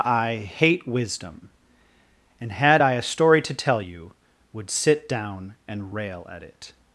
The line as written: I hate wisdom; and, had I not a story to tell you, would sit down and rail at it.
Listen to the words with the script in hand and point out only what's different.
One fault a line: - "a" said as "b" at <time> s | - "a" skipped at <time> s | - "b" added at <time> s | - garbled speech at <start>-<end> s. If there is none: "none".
- "not" skipped at 2.9 s